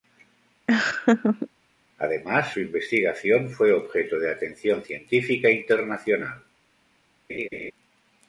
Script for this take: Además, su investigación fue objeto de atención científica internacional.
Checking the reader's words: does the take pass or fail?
pass